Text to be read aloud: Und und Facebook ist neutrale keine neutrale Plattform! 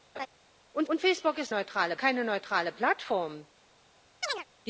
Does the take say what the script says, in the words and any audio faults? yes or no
no